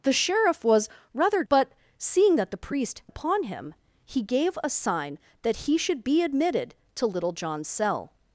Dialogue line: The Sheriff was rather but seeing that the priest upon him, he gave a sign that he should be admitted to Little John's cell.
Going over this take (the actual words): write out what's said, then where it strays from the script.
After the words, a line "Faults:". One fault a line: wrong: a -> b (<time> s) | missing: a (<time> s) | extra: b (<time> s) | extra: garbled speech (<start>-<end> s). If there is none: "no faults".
The Sheriff was rather but seeing that the priest upon him, he gave a sign that he should be admitted to Little John's cell.
Faults:
no faults